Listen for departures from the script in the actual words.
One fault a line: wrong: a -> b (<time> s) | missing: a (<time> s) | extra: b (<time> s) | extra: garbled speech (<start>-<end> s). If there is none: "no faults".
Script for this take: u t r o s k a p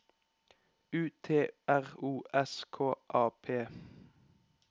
no faults